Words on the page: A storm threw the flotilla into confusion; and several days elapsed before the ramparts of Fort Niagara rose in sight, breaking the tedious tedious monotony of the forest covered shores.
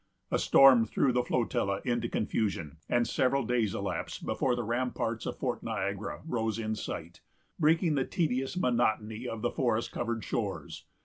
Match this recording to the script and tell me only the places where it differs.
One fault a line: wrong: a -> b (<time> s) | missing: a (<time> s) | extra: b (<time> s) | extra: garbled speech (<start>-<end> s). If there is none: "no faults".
missing: tedious (8.5 s)